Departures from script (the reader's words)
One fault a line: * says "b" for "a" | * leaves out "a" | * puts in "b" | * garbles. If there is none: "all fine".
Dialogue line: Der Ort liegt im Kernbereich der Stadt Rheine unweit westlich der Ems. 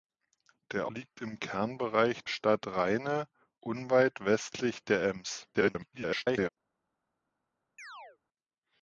* leaves out "Ort"
* leaves out "der"
* garbles